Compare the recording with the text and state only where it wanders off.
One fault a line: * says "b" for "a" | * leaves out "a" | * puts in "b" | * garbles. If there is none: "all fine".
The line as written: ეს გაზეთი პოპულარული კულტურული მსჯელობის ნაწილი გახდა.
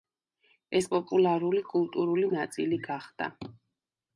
* leaves out "გაზეთი"
* leaves out "მსჯელობის"